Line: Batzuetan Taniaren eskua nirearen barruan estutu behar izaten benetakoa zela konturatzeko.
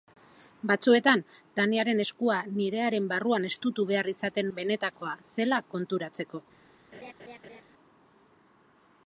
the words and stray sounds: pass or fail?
fail